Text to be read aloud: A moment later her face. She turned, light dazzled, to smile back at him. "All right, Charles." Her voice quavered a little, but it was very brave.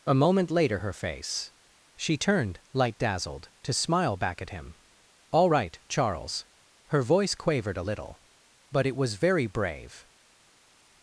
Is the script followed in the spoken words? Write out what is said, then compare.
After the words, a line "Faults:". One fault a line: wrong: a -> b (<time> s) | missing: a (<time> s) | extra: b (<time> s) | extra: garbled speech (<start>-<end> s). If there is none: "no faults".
A moment later her face. She turned, light dazzled, to smile back at him. "All right, Charles." Her voice quavered a little, but it was very brave.
Faults:
no faults